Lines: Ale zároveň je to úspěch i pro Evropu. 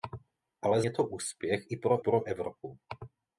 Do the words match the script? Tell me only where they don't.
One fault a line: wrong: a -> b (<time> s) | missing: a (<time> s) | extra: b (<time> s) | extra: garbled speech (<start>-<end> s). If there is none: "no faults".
missing: zároveň (0.8 s)
extra: pro (2.0 s)